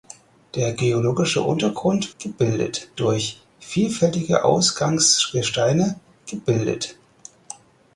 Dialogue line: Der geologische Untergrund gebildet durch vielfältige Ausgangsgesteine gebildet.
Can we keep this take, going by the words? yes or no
yes